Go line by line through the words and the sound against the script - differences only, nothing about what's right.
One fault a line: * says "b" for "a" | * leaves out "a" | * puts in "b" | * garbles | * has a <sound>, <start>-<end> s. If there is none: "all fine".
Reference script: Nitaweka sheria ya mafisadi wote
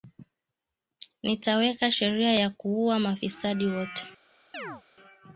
* puts in "kuua"
* has a chirp, 4.5-4.8 s